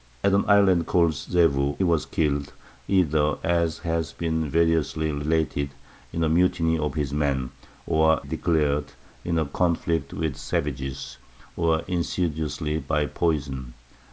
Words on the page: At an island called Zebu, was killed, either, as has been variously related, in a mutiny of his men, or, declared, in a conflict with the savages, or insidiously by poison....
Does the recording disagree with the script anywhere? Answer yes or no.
no